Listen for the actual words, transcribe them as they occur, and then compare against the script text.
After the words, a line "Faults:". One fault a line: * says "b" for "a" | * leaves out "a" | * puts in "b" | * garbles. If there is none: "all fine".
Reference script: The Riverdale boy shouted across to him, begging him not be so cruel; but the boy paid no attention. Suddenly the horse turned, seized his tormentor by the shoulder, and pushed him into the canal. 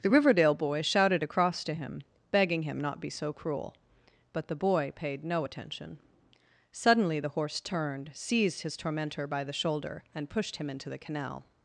The Riverdale boy shouted across to him, begging him not be so cruel; but the boy paid no attention. Suddenly the horse turned, seized his tormentor by the shoulder, and pushed him into the canal.
Faults:
all fine